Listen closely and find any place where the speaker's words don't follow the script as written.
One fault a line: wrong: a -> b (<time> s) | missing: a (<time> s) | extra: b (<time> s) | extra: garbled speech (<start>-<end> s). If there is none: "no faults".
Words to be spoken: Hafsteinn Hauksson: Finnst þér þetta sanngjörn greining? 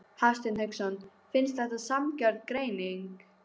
missing: þér (1.6 s)